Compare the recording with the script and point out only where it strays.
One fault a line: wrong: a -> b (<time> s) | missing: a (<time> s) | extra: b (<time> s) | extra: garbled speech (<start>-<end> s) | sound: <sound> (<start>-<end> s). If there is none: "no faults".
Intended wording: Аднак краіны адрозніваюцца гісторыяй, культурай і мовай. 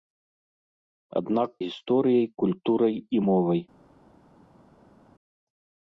missing: краіны адрозніваюцца (1.5 s)